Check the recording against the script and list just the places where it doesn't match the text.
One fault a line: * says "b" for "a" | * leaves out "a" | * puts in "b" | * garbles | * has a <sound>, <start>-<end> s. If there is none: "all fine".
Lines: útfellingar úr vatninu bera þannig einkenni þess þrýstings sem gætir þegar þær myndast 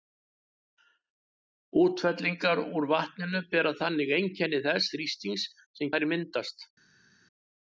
* leaves out "gætir þegar"